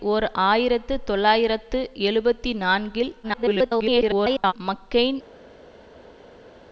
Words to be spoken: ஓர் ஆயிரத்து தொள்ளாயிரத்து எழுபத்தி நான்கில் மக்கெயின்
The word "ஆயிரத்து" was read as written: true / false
true